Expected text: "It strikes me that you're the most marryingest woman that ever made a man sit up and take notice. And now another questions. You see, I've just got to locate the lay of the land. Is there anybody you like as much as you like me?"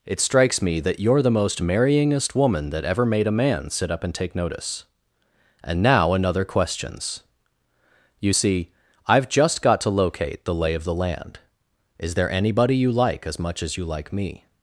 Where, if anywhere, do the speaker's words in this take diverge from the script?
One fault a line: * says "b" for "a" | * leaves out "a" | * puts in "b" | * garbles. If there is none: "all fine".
all fine